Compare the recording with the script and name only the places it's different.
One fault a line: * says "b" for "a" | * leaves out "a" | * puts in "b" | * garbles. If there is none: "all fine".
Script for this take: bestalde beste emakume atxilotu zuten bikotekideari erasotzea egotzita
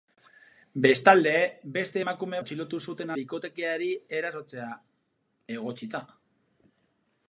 all fine